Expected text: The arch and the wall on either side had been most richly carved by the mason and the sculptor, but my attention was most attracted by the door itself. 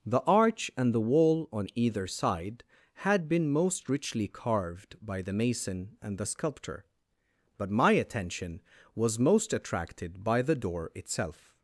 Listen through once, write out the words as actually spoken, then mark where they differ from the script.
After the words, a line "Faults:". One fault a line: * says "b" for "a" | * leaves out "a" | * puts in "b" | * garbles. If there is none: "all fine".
The arch and the wall on either side had been most richly carved by the mason and the sculptor, but my attention was most attracted by the door itself.
Faults:
all fine